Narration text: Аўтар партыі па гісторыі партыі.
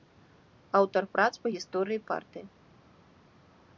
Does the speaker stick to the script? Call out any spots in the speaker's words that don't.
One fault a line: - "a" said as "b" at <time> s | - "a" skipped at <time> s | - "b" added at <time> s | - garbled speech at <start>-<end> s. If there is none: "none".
- "партыі" said as "прац" at 1.2 s